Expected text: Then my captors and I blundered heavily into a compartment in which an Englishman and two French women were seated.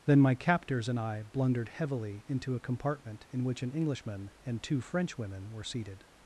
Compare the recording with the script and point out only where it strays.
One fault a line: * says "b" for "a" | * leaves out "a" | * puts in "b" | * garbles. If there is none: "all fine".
all fine